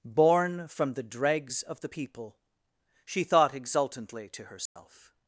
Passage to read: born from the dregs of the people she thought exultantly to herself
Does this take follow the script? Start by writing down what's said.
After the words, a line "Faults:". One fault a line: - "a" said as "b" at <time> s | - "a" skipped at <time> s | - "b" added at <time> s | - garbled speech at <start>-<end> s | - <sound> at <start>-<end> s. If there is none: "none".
born from the dregs of the people she thought exultantly to herself
Faults:
- dropout at 4.7-4.8 s